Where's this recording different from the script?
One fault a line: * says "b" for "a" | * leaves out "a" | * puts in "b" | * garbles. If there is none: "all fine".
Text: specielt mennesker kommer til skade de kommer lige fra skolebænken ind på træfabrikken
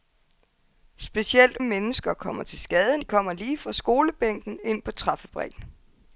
all fine